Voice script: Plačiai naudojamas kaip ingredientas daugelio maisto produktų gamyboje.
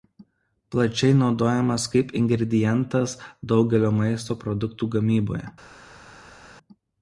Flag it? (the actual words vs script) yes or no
no